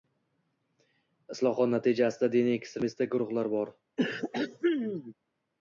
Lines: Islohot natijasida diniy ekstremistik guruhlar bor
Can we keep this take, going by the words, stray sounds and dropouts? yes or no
no